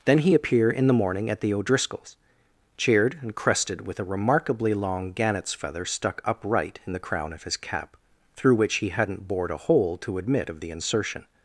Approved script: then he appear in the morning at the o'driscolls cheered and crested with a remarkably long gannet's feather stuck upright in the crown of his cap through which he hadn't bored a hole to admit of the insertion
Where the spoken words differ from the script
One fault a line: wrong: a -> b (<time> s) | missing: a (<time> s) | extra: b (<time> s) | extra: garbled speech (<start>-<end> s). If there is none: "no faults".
no faults